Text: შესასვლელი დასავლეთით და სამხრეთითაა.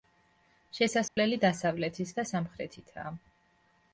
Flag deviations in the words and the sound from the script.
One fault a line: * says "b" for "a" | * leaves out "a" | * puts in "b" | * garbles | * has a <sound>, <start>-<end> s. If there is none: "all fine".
* has a dropout, 1.1-1.2 s